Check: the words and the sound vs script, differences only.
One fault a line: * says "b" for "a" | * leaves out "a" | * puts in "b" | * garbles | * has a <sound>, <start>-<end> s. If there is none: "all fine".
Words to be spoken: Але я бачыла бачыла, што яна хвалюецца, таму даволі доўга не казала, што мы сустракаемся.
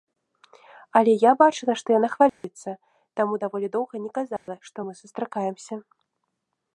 * leaves out "бачыла"
* has a dropout, 2.3-2.4 s
* has a dropout, 4.4-4.5 s